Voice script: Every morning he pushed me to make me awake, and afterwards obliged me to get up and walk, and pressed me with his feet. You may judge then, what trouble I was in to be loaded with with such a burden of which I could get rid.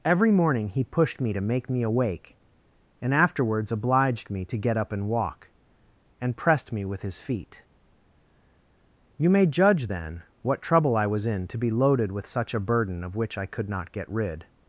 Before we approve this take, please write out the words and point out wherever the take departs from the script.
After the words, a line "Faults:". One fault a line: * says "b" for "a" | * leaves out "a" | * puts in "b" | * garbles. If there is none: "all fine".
Every morning he pushed me to make me awake, and afterwards obliged me to get up and walk, and pressed me with his feet. You may judge then, what trouble I was in to be loaded with such a burden of which I could not get rid.
Faults:
* leaves out "with"
* puts in "not"